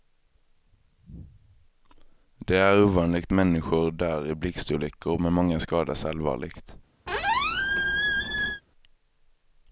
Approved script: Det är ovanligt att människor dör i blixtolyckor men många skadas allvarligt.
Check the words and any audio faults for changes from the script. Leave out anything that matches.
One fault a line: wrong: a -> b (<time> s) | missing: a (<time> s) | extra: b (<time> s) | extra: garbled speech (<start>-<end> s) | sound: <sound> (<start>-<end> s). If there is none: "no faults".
missing: att (3.3 s)
sound: squeak (7.1-8.6 s)